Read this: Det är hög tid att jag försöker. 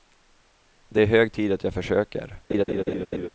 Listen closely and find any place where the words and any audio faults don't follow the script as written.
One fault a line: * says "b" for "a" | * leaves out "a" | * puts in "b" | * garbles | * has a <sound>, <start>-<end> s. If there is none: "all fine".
* has a laugh, 2.5-3.3 s